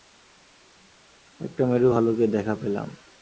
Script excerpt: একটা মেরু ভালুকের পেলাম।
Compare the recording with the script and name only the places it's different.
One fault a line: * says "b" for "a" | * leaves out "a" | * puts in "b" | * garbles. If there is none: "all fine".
* puts in "দেখা"